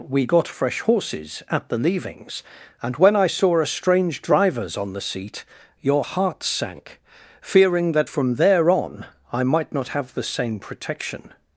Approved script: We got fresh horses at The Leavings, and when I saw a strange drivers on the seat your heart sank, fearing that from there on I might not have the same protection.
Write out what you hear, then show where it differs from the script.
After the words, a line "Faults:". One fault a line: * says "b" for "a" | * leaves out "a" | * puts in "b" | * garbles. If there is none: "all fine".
We got fresh horses at The Leavings, and when I saw a strange drivers on the seat your heart sank, fearing that from there on I might not have the same protection.
Faults:
all fine